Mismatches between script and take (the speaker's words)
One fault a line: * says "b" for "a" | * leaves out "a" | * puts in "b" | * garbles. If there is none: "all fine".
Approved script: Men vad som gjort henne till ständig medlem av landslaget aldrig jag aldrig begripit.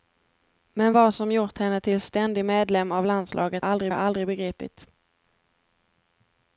all fine